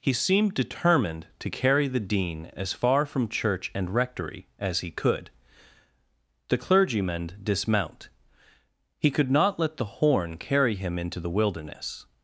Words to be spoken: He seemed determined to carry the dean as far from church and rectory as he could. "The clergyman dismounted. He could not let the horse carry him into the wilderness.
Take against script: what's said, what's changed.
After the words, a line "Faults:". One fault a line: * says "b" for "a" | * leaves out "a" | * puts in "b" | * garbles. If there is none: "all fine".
He seemed determined to carry the dean as far from church and rectory as he could. "The clergyman dismount. He could not let the horn carry him into the wilderness.
Faults:
* says "dismount" for "dismounted"
* says "horn" for "horse"